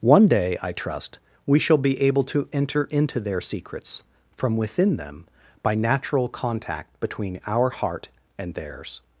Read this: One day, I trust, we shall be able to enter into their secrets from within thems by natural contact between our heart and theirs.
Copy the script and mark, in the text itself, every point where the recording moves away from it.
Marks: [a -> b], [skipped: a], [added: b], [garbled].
One day, I trust, we shall be able to enter into their secrets from within [thems -> them] by natural contact between our heart and theirs.